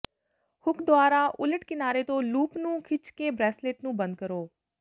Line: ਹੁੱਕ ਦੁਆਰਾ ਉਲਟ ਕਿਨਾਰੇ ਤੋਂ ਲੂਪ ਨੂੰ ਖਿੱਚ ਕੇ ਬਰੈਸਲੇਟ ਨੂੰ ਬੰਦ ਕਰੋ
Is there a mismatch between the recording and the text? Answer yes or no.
no